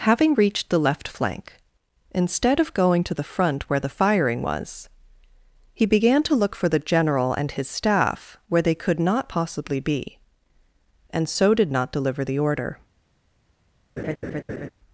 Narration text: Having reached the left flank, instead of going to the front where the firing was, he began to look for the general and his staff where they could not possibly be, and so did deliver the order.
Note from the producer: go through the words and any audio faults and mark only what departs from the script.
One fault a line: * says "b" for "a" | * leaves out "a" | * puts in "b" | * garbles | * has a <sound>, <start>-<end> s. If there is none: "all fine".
* puts in "not"
* has a laugh, 14.0-14.7 s